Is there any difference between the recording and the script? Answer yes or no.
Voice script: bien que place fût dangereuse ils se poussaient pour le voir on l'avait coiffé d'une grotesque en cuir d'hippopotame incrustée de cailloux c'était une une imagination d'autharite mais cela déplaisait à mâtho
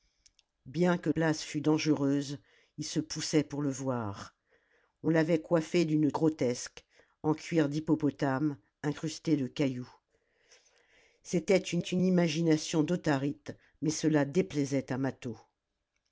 no